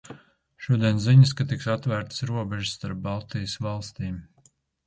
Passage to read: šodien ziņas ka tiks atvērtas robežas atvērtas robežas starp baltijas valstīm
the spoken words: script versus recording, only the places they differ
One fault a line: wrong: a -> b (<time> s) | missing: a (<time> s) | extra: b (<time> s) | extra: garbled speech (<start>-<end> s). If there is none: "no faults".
missing: atvērtas robežas (2.8 s)